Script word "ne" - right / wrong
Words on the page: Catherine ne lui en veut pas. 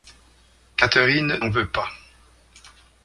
wrong